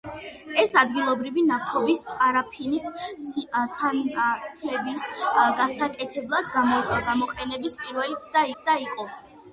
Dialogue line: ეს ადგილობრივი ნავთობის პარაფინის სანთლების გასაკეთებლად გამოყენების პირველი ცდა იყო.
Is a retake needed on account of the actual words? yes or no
yes